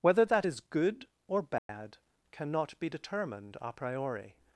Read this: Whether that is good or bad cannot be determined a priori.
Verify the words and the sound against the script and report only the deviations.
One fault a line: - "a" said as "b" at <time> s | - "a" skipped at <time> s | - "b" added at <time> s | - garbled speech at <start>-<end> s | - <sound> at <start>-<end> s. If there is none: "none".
- dropout at 1.6-1.7 s